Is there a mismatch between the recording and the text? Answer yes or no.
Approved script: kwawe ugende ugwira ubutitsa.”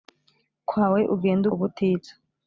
yes